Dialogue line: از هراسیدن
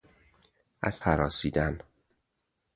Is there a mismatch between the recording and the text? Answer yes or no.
no